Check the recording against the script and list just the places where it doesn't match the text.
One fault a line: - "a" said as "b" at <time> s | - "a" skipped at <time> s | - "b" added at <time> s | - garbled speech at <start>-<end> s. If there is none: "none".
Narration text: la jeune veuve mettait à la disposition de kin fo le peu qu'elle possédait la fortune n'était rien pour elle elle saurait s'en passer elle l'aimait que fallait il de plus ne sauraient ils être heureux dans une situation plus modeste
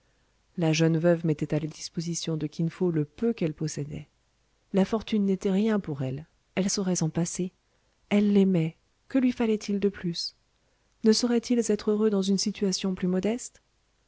- "lui" added at 9.2 s